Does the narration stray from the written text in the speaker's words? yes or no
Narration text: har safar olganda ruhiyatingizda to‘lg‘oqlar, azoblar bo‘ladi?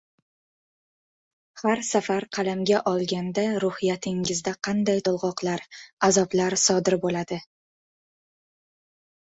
yes